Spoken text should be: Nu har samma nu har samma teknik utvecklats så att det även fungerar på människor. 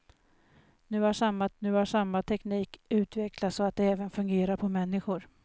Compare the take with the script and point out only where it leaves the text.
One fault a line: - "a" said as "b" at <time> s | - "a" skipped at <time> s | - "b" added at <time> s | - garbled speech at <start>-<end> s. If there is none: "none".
none